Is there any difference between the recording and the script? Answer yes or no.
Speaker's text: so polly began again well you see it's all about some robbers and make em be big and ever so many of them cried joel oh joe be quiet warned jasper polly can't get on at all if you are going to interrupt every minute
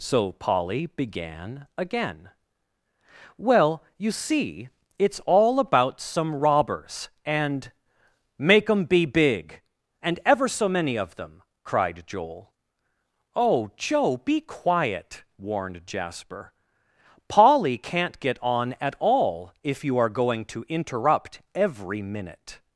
no